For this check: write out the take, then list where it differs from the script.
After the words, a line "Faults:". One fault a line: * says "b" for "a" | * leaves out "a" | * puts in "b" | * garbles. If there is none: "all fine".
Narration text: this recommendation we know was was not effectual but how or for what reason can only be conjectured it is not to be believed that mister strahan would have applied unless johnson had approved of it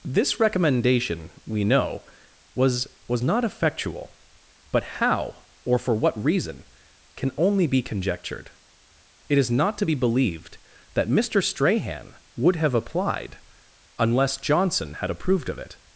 this recommendation we know was was not effectual but how or for what reason can only be conjectured it is not to be believed that mister strahan would have applied unless johnson had approved of it
Faults:
all fine